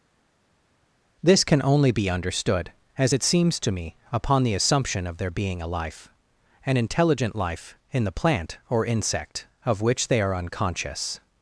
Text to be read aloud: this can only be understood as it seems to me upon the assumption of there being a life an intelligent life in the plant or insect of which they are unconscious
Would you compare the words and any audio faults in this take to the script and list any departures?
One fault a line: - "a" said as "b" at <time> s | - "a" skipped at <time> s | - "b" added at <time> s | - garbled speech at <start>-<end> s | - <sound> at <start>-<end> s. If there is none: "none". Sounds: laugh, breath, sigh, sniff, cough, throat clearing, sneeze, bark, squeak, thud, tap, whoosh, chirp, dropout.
none